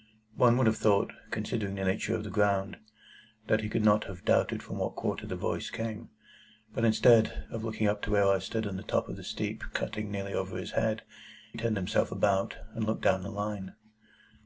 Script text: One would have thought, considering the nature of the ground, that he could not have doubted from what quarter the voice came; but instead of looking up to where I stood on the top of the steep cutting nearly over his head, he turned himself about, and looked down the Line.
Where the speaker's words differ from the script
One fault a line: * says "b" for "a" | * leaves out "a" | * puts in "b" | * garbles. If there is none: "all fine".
* leaves out "he"